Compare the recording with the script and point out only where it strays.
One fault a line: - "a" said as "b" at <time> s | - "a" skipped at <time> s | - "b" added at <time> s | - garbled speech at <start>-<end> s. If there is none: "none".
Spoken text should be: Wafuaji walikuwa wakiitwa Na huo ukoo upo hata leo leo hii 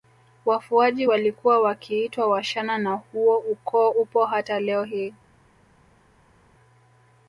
- "Washana" added at 2.3 s
- "leo" skipped at 4.8 s